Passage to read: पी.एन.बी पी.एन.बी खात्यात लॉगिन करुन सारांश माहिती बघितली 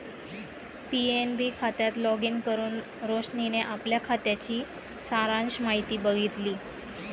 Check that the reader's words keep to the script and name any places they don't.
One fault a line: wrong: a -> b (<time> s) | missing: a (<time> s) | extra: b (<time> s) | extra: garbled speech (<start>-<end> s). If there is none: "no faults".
missing: पी.एन.बी (1.5 s)
extra: रोशनीने आपल्या खात्याची (3.0 s)